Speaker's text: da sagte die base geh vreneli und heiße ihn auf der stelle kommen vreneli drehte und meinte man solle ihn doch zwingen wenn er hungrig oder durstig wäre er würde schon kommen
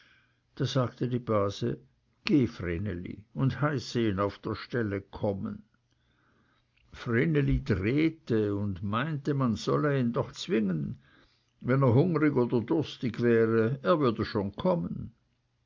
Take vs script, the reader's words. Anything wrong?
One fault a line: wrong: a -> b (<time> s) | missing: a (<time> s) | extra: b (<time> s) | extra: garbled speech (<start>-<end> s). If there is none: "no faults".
no faults